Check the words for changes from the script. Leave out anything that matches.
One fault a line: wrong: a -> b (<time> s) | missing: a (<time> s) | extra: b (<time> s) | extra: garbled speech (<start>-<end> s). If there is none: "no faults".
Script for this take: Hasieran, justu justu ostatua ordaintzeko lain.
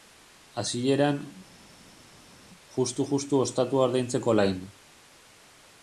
no faults